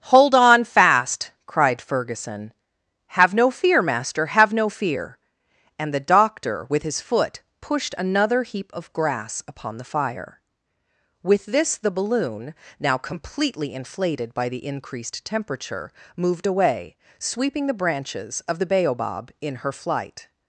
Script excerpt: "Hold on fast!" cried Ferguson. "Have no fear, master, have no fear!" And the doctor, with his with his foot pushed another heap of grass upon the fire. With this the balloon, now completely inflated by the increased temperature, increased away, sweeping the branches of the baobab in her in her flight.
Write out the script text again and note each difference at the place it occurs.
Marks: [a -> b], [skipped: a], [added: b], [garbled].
"Hold on fast!" cried Ferguson. "Have no fear, master, have no fear!" And the doctor, with his [skipped: with his] foot pushed another heap of grass upon the fire. With this the balloon, now completely inflated by the increased temperature, [increased -> moved] away, sweeping the branches of the baobab in her [skipped: in her] flight.